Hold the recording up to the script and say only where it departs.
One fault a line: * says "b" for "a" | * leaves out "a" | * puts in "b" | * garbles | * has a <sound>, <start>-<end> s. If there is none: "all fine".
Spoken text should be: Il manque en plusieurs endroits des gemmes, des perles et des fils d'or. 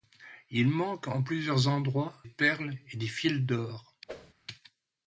* leaves out "des gemmes des"
* has a whoosh, 4.1-4.3 s